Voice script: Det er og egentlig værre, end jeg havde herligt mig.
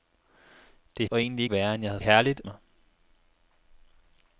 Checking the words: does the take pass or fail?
pass